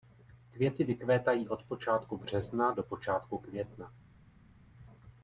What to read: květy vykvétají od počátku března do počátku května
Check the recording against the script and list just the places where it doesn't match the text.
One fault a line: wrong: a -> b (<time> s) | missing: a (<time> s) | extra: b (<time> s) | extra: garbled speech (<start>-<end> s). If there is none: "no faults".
no faults